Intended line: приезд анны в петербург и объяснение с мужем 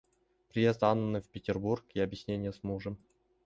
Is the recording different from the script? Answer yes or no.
no